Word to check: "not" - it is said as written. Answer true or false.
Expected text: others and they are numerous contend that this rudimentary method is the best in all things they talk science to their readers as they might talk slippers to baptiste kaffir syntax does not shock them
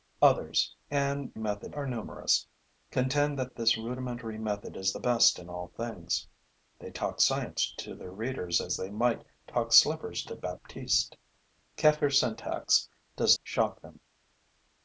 false